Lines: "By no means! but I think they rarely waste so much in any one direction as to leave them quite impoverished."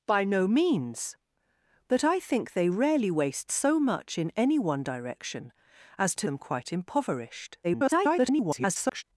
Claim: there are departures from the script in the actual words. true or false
true